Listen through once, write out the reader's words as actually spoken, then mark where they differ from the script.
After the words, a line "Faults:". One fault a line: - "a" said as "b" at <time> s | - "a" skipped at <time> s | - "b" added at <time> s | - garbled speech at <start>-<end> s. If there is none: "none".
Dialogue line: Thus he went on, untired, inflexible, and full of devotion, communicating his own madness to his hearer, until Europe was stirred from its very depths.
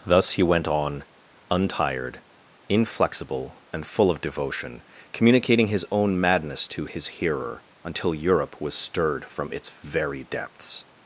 Thus he went on, untired, inflexible, and full of devotion, communicating his own madness to his hearer, until Europe was stirred from its very depths.
Faults:
none